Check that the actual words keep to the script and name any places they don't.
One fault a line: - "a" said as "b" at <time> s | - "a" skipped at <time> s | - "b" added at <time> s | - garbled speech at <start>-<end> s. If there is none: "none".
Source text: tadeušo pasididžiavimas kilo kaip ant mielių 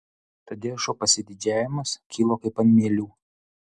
none